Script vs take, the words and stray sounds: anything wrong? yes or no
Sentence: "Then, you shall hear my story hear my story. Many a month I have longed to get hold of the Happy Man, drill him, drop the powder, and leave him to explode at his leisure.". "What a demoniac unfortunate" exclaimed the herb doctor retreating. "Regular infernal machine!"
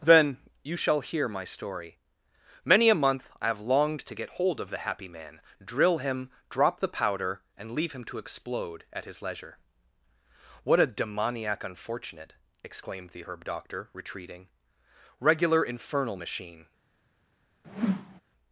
yes